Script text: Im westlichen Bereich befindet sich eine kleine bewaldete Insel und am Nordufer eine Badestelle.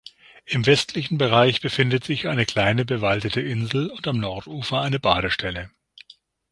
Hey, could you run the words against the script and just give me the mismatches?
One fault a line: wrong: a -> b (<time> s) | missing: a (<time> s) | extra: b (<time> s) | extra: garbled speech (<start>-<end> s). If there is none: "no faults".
no faults